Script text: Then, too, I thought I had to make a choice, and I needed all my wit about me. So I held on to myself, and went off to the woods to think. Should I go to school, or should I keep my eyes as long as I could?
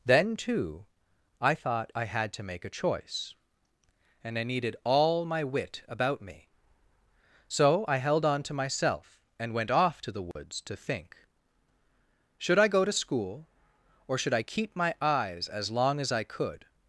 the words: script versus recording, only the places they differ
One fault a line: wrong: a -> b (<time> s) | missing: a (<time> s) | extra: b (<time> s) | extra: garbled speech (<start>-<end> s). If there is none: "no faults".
no faults